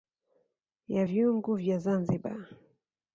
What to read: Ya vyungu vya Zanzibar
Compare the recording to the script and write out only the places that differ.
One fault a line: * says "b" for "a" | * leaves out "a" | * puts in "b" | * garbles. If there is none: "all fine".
all fine